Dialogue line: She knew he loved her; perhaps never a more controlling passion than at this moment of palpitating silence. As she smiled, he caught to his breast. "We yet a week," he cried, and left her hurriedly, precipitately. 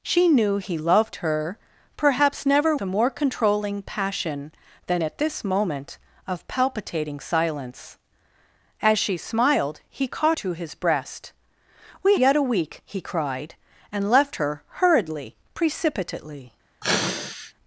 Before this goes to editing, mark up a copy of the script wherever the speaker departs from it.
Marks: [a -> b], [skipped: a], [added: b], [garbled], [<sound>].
She knew he loved her; perhaps never a more controlling passion than at this moment of palpitating silence. As she smiled, he caught to his breast. "We yet a week," he cried, and left her hurriedly, precipitately. [sneeze]